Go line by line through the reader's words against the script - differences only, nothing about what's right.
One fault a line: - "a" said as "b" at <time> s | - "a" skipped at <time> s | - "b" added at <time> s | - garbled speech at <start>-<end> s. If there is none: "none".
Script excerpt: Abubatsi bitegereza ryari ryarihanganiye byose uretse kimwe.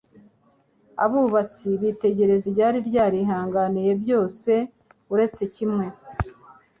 none